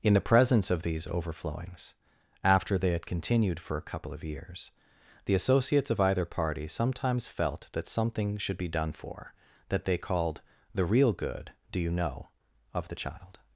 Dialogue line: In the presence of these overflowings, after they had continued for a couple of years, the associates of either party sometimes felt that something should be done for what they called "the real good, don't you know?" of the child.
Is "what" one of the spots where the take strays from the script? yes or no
yes